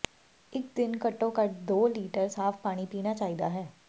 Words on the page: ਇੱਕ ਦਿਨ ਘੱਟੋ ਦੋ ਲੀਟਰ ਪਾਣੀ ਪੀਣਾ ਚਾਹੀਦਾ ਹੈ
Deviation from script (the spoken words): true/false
true